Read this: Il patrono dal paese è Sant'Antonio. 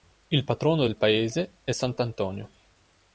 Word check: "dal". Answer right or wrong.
wrong